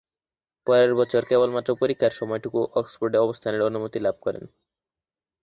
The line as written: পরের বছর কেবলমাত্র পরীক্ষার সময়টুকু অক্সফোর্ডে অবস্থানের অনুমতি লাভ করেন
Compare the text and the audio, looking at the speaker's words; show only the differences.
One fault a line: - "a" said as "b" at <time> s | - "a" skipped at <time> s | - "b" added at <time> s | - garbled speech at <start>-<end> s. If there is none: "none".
none